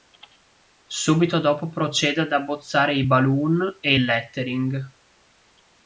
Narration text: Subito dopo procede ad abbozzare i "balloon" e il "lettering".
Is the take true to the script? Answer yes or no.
yes